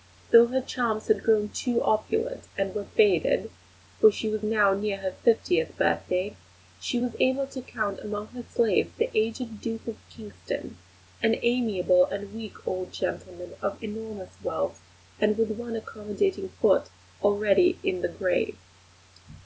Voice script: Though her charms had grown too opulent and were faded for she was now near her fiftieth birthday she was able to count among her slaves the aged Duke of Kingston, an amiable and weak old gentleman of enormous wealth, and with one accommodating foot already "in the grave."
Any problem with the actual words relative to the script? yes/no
no